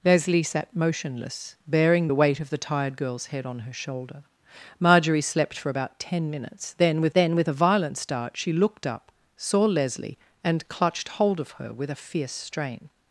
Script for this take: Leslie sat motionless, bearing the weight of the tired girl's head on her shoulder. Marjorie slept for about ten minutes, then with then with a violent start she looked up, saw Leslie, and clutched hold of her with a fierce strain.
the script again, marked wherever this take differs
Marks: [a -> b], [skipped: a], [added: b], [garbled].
Leslie sat motionless, bearing the weight of the tired girl's head on her shoulder. Marjorie slept for about ten minutes, then with then with a violent start she looked up, saw Leslie, and clutched hold of her with a fierce strain.